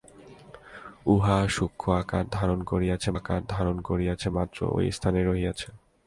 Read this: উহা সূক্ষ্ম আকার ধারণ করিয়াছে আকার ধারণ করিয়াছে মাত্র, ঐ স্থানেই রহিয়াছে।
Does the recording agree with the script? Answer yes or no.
yes